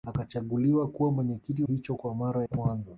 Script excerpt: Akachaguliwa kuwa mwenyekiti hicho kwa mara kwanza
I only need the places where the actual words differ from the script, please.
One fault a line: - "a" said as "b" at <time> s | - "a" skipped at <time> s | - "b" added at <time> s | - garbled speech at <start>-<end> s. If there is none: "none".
none